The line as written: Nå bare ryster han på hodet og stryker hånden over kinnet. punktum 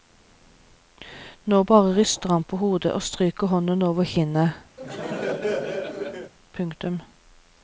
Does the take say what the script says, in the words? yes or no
yes